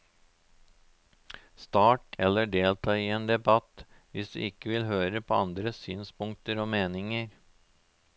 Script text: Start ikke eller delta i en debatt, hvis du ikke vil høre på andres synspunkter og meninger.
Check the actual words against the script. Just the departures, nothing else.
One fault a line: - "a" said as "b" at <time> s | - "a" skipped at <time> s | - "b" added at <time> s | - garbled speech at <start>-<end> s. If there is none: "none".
- "ikke" skipped at 2.2 s